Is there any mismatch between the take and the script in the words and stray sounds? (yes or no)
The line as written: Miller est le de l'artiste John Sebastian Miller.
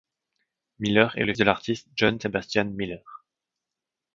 no